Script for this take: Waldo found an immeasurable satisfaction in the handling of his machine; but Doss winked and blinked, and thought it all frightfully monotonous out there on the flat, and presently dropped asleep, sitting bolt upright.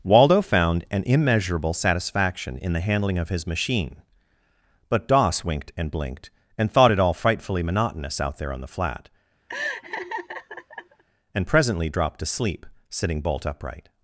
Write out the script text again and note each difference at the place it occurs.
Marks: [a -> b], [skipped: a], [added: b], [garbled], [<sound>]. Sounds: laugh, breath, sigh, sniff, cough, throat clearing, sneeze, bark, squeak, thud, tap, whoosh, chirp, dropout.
Waldo found an immeasurable satisfaction in the handling of his machine; but Doss winked and blinked, and thought it all frightfully monotonous out there on the flat, [laugh] and presently dropped [asleep, -> to sleep] sitting bolt upright.